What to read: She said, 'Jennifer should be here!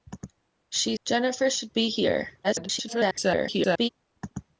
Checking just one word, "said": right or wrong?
wrong